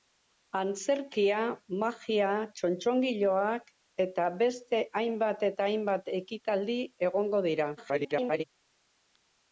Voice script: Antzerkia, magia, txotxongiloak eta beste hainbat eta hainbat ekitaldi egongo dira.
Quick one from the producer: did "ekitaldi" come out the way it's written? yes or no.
yes